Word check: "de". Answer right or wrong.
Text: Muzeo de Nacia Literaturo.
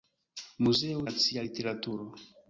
wrong